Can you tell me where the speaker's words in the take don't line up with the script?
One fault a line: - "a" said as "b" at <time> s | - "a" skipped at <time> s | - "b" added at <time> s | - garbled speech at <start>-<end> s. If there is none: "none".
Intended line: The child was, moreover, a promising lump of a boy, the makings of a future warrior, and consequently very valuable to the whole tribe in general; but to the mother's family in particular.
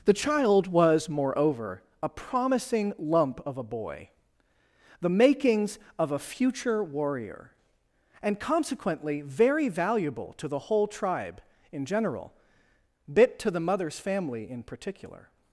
- "but" said as "bit" at 13.1 s